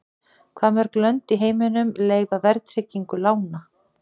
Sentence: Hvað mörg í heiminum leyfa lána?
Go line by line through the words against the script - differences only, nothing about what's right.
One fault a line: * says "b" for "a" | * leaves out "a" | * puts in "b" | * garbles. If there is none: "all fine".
* puts in "lönd"
* puts in "verðtryggingu"